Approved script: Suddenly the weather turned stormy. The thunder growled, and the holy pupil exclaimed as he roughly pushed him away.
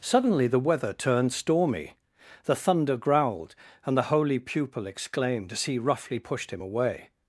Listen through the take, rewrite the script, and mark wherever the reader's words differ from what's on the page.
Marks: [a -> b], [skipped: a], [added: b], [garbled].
Suddenly the weather turned stormy. The thunder growled, and the holy pupil exclaimed as he roughly pushed him away.